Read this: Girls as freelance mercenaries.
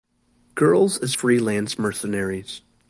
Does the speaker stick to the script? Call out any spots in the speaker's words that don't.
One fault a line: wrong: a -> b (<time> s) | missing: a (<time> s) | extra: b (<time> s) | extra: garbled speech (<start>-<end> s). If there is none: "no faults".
no faults